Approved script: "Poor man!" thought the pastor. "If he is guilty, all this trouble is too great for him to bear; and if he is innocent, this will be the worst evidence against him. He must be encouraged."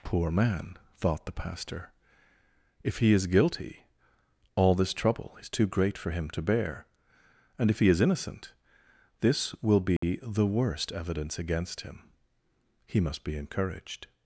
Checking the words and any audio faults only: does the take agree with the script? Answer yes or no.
no